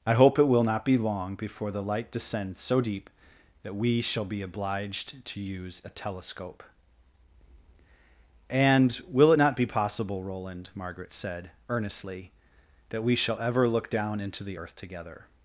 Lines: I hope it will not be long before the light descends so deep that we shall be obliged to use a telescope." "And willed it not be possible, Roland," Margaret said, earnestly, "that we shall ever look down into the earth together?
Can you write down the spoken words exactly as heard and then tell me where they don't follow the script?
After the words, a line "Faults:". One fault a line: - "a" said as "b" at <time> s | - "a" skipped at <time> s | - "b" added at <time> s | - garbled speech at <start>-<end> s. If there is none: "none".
I hope it will not be long before the light descends so deep that we shall be obliged to use a telescope." "And will it not be possible, Roland," Margaret said, earnestly, "that we shall ever look down into the earth together?
Faults:
- "willed" said as "will" at 9.1 s